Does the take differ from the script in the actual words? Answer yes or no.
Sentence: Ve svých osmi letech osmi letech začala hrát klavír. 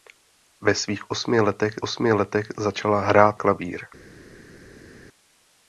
no